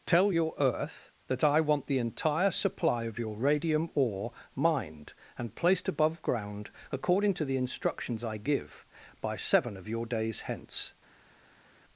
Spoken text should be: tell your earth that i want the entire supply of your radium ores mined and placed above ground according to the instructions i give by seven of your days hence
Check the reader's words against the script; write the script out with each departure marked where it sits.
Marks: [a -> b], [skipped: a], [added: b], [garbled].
tell your earth that i want the entire supply of your radium [ores -> ore] mined and placed above ground according to the instructions i give by seven of your days hence